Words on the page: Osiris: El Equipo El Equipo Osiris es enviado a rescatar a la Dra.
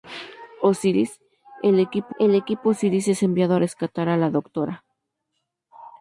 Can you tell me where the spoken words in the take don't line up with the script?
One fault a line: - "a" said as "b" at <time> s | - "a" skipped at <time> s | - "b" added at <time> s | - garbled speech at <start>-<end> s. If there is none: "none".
none